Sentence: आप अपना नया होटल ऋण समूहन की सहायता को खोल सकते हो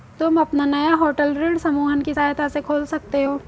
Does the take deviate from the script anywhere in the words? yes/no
yes